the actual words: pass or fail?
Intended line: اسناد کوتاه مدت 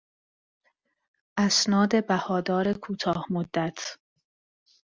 fail